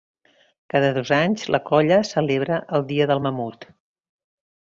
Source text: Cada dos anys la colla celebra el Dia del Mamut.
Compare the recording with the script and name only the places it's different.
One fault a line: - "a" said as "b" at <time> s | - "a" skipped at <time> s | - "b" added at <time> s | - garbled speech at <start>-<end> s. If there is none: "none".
none